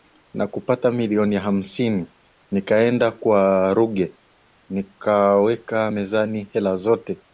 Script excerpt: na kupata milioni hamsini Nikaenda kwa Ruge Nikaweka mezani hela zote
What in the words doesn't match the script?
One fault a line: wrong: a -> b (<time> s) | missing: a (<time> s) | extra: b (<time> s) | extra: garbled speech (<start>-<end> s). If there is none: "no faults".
no faults